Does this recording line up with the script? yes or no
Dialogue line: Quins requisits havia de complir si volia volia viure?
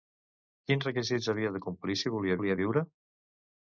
yes